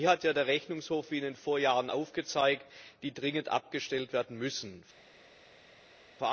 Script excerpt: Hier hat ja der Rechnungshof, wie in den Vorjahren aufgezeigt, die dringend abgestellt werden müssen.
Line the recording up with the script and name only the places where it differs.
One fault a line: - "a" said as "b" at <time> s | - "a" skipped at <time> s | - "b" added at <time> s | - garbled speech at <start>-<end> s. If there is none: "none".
none